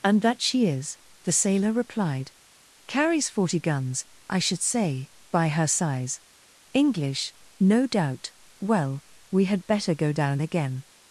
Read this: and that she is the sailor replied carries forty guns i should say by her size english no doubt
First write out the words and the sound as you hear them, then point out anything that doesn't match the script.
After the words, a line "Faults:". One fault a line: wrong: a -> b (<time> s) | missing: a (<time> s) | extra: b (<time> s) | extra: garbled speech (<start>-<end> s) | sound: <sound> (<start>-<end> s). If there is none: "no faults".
and that she is the sailor replied carries forty guns i should say by her size english no doubt well we had better go down again
Faults:
extra: well we had better go down again (8.6 s)